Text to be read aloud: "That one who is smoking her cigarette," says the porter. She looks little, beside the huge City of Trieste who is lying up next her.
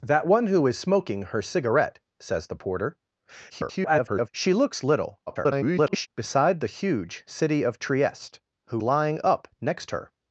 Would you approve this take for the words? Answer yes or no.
no